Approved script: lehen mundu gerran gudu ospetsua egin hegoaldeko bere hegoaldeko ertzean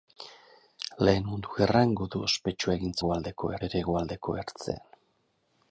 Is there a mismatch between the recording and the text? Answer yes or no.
no